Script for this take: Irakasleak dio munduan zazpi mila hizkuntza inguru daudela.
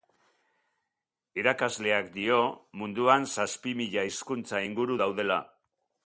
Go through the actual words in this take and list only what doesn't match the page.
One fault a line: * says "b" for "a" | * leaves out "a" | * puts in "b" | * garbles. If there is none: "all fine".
all fine